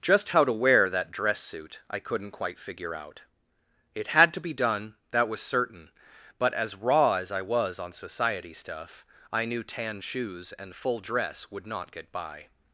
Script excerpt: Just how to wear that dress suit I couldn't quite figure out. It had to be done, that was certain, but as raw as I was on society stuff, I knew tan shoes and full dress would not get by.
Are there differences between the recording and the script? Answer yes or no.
no